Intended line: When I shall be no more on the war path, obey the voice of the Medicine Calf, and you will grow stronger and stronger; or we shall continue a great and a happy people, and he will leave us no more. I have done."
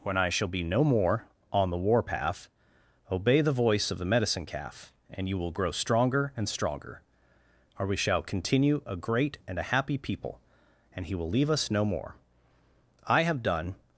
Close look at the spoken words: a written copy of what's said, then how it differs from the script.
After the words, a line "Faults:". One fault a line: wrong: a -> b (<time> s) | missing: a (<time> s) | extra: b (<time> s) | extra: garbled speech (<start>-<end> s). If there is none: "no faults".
When I shall be no more on the war path, obey the voice of the Medicine Calf, and you will grow stronger and stronger; or we shall continue a great and a happy people, and he will leave us no more. I have done."
Faults:
no faults